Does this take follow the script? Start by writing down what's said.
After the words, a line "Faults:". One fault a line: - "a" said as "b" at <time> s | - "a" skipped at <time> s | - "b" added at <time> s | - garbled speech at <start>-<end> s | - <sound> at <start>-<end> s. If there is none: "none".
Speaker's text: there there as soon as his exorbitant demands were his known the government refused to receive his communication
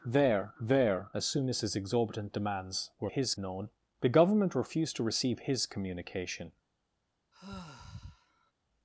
there there as soon as his exorbitant demands were his known the government refused to receive his communication
Faults:
- sigh at 7.3-8.5 s